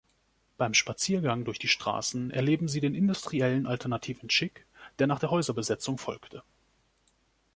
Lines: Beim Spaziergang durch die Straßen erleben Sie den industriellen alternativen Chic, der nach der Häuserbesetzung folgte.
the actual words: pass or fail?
pass